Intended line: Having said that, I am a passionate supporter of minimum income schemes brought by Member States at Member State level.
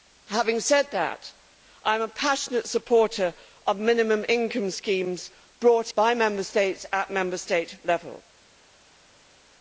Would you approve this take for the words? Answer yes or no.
yes